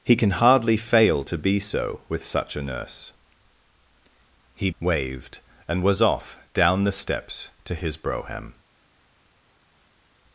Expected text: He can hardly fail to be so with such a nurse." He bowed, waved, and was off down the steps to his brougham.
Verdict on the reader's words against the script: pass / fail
fail